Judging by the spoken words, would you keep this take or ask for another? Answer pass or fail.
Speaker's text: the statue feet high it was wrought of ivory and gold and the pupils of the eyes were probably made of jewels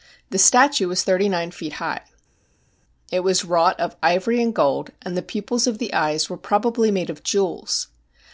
fail